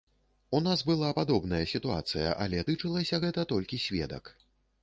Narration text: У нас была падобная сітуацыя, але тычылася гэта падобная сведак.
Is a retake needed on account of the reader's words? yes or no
yes